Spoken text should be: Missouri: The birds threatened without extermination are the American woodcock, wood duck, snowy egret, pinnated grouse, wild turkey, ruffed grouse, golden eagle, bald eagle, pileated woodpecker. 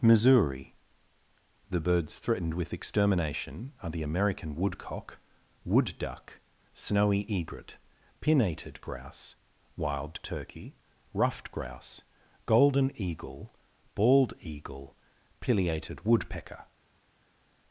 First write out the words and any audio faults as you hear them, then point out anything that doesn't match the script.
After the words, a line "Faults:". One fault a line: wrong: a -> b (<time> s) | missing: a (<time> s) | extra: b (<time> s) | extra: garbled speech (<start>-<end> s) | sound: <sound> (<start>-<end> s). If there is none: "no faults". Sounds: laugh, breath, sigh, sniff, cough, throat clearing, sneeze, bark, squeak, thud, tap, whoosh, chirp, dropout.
Missouri: The birds threatened with extermination are the American woodcock, wood duck, snowy egret, pinnated grouse, wild turkey, ruffed grouse, golden eagle, bald eagle, pileated woodpecker.
Faults:
wrong: without -> with (2.5 s)